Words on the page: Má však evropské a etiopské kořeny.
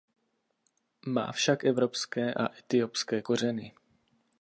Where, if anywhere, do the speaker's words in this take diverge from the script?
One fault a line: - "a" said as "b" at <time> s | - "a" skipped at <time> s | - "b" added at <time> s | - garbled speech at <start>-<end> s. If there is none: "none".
none